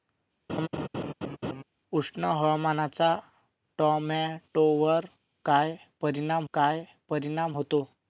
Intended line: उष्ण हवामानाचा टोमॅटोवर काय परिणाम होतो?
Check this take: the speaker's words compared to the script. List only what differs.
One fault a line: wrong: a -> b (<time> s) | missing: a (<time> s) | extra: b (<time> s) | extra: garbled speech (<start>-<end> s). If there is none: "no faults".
extra: काय परिणाम (6.5 s)